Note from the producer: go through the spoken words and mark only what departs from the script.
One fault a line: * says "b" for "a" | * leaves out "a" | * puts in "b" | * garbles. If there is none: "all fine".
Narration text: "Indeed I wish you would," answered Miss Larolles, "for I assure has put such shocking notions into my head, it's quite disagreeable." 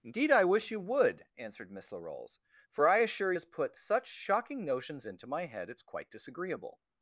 all fine